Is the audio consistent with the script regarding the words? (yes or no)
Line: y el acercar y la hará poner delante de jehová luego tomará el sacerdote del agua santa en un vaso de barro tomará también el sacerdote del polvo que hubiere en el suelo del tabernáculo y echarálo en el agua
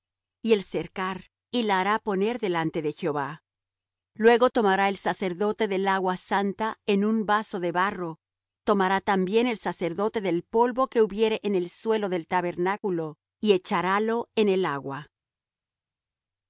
yes